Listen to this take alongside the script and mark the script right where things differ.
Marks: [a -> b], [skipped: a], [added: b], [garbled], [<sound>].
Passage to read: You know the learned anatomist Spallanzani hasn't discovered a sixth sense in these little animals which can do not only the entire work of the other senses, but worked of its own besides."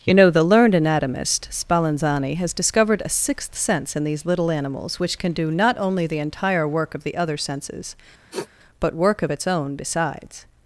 You know the learned anatomist Spallanzani [hasn't -> has] discovered a sixth sense in these little animals which can do not only the entire work of the other senses, [sniff] but [worked -> work] of its own besides."